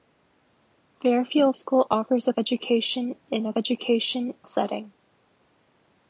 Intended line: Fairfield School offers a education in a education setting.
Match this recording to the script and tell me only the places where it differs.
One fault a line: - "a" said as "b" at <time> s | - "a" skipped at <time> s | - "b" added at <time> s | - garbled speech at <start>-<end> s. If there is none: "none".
none